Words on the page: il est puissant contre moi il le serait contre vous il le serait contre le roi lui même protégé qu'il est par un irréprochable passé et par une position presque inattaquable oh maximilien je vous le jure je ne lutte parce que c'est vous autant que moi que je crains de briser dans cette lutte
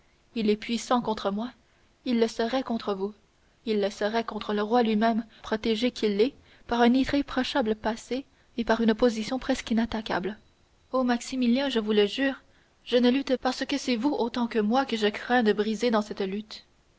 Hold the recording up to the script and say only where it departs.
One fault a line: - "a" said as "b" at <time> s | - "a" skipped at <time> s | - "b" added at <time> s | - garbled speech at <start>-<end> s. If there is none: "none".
none